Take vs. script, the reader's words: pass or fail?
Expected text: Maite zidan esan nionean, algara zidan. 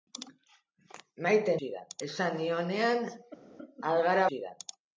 pass